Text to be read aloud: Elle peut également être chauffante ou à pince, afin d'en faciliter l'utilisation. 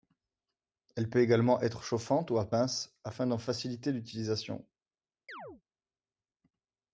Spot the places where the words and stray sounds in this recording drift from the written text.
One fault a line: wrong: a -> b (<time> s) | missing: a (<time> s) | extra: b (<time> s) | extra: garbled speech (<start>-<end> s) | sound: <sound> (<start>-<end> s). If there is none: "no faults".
sound: chirp (5.3-5.6 s)